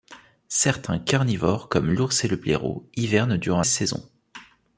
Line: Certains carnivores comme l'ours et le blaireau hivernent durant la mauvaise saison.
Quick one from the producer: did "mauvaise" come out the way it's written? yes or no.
no